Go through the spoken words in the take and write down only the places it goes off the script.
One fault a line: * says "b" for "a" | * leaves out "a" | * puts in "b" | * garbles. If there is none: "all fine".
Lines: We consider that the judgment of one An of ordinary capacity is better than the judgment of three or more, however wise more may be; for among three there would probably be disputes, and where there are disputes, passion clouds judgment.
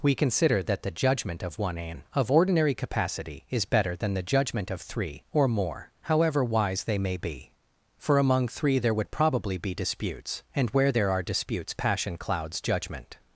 * says "they" for "more"